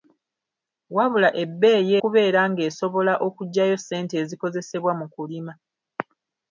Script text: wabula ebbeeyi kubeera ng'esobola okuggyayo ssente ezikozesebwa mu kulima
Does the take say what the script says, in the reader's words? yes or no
yes